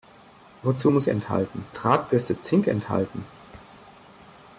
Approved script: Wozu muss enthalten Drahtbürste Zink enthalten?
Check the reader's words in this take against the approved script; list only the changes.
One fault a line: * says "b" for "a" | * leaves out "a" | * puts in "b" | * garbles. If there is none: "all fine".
all fine